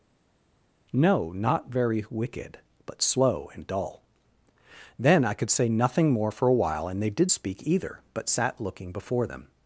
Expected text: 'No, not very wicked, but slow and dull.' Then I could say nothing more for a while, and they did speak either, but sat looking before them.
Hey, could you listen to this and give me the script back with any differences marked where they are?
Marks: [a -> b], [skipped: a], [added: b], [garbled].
'No, not very wicked, but slow and dull.' Then I could say nothing more for a while, and they did speak either, but sat looking before them.